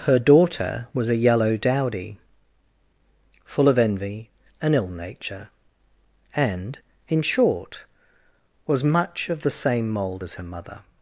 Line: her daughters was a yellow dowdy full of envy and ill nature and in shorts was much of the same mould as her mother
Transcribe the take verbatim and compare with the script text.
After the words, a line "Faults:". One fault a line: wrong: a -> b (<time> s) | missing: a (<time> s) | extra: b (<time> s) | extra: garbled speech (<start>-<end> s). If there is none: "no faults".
her daughter was a yellow dowdy full of envy and ill nature and in short was much of the same mould as her mother
Faults:
wrong: daughters -> daughter (0.2 s)
wrong: shorts -> short (7.2 s)